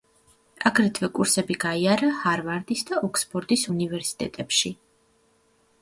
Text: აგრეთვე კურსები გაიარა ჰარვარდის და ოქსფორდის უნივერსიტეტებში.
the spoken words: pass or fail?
pass